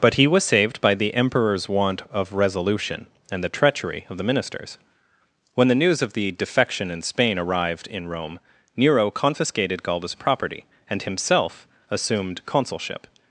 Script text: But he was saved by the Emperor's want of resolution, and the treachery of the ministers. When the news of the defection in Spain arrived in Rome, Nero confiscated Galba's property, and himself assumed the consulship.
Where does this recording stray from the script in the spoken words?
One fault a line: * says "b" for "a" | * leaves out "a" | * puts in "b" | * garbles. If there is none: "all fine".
* leaves out "the"